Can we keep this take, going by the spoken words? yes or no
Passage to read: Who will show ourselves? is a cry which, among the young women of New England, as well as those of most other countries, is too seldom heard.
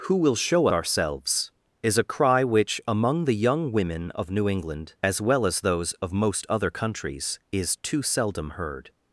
yes